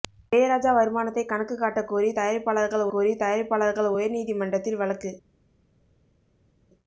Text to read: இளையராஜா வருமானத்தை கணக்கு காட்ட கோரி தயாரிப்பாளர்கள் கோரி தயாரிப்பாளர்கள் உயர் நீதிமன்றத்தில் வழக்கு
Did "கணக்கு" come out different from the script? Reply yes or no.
no